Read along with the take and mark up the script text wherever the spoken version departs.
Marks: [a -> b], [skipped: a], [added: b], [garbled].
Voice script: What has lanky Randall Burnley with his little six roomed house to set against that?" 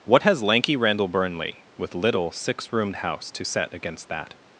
What has lanky Randall Burnley with [skipped: his] little six roomed house to set against that?"